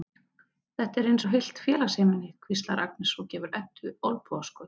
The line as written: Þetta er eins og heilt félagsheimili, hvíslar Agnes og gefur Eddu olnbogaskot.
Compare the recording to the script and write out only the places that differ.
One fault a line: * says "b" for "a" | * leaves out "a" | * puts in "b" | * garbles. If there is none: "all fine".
all fine